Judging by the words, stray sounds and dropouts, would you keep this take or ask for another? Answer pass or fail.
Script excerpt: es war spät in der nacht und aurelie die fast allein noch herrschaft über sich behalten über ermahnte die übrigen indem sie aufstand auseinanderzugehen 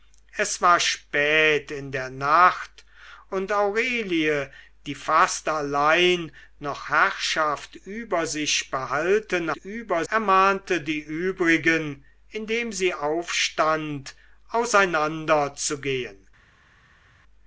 pass